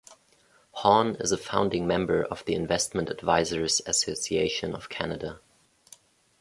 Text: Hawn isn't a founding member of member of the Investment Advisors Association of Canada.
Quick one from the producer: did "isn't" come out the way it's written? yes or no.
no